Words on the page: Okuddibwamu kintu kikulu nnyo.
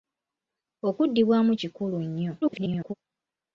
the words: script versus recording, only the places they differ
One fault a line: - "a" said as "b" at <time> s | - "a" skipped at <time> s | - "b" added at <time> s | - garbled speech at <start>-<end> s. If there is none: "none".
- "kintu" skipped at 1.5 s
- garbled speech at 2.4-2.9 s